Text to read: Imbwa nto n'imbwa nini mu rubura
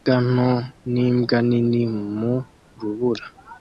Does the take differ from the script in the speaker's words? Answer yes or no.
no